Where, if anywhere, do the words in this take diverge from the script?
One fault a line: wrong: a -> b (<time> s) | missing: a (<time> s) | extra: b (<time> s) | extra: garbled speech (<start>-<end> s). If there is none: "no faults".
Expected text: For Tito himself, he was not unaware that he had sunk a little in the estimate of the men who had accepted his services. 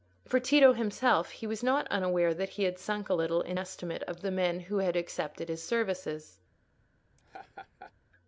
missing: the (3.6 s)